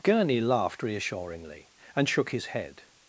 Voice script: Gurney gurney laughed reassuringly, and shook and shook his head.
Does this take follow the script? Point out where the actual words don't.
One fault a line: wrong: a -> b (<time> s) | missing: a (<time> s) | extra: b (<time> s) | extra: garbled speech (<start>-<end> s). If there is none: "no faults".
missing: gurney (0.4 s)
missing: and shook (2.3 s)